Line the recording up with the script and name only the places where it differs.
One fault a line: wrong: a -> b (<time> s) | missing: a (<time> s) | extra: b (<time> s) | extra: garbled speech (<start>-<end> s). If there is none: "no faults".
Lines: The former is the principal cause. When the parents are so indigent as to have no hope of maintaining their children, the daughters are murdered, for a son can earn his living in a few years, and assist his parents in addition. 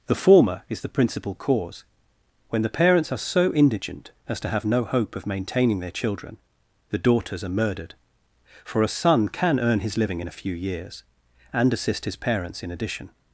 no faults